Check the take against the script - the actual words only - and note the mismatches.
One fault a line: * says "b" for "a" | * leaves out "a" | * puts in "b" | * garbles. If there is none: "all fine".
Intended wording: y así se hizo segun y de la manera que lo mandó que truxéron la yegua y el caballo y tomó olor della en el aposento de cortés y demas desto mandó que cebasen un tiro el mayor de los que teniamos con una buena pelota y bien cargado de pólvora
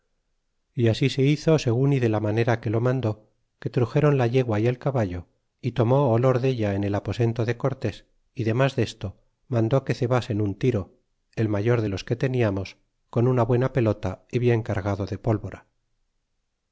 all fine